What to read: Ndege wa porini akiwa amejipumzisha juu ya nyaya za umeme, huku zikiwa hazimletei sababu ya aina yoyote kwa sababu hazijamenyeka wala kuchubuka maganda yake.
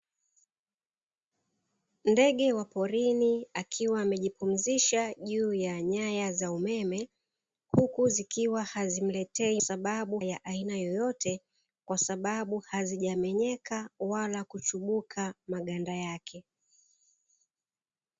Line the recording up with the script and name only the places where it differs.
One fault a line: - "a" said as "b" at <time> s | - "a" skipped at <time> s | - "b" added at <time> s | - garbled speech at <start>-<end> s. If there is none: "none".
none